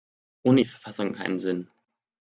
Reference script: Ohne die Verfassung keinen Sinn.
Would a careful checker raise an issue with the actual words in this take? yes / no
no